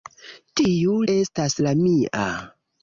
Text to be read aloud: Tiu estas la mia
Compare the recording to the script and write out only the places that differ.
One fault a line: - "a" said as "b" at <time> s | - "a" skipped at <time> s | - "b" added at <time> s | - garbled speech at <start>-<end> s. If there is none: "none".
none